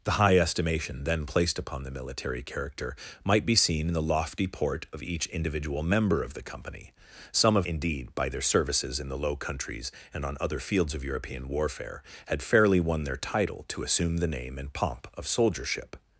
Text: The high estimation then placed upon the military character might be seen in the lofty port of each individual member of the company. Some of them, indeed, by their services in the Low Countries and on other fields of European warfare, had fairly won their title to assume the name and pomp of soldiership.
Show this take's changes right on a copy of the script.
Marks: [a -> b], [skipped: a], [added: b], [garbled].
The high estimation then placed upon the military character might be seen in the lofty port of each individual member of the company. Some of [skipped: them,] indeed, by their services in the Low Countries and on other fields of European warfare, had fairly won their title to assume the name and pomp of soldiership.